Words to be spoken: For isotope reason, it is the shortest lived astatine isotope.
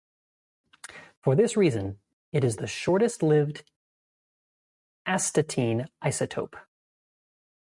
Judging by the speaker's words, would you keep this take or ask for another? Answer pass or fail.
fail